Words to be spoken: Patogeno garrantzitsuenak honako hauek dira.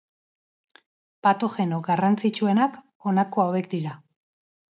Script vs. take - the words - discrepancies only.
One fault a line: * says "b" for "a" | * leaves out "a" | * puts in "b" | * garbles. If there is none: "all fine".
all fine